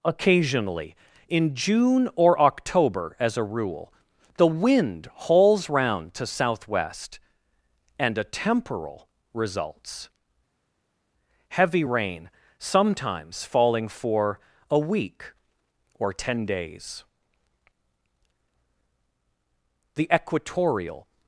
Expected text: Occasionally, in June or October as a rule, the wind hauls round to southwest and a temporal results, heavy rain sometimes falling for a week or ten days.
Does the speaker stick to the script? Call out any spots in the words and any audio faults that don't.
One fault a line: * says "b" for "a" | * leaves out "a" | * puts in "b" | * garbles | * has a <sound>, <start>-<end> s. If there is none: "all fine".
* puts in "The equatorial"